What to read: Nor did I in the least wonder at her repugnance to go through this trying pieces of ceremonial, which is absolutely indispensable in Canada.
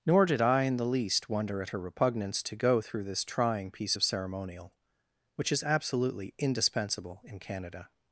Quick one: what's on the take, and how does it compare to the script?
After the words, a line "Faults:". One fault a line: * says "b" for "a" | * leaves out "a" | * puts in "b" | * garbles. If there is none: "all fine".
Nor did I in the least wonder at her repugnance to go through this trying piece of ceremonial, which is absolutely indispensable in Canada.
Faults:
* says "piece" for "pieces"